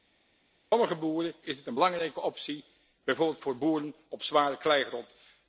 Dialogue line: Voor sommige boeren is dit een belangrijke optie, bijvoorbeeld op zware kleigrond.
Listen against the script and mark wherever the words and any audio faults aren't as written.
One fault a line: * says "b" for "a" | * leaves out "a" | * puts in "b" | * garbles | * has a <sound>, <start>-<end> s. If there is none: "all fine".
* puts in "voor boeren"